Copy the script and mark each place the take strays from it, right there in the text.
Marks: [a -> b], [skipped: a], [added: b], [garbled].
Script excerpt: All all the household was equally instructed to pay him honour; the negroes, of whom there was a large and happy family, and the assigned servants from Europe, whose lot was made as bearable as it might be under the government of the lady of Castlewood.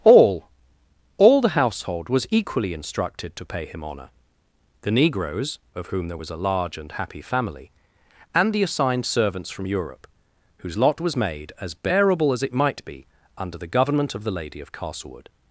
All all the household was equally instructed to pay him honour; the negroes, of whom there was a large and happy family, and the assigned servants from Europe, whose lot was made as bearable as it might be under the government of the lady of Castlewood.